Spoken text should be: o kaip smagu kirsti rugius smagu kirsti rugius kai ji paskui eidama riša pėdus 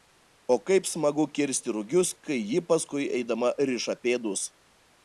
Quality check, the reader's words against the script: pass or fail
fail